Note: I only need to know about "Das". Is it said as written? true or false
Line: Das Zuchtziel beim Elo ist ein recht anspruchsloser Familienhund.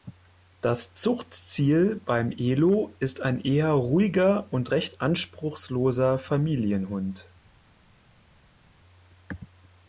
true